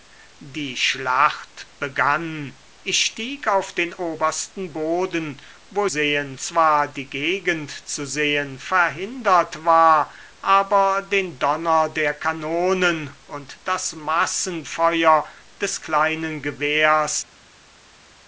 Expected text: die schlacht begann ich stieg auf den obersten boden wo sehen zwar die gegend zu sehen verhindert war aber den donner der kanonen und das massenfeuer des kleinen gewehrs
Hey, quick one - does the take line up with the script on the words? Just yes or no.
yes